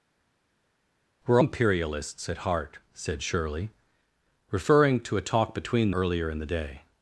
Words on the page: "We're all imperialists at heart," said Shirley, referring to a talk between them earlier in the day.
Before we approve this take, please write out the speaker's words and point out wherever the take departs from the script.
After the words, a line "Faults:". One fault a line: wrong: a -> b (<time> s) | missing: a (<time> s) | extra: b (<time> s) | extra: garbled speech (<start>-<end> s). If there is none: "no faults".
"We're imperialists at heart," said Shirley, referring to a talk between earlier in the day.
Faults:
missing: all (1.4 s)
missing: them (5.9 s)